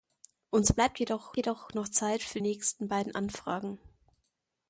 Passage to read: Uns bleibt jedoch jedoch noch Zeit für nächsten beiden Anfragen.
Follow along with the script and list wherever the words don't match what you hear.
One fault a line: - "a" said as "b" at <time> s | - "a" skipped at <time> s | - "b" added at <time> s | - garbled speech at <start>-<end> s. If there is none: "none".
none